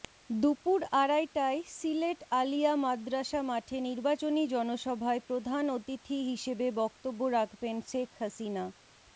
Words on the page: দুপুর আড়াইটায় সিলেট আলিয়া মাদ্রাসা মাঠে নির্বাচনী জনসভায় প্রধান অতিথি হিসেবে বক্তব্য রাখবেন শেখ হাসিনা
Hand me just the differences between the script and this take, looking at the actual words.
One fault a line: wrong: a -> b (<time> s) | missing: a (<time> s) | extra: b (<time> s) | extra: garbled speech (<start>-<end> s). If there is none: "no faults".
no faults